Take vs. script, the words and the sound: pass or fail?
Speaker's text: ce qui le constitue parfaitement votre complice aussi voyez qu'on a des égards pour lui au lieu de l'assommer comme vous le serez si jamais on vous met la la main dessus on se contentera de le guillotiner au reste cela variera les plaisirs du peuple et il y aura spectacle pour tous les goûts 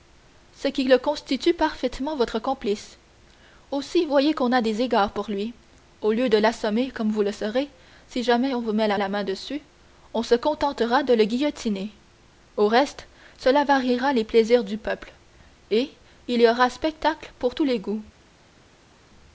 pass